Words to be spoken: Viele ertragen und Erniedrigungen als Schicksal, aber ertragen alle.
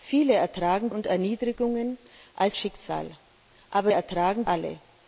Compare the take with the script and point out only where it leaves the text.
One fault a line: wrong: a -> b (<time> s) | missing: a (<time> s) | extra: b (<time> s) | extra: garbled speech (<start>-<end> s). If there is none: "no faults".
no faults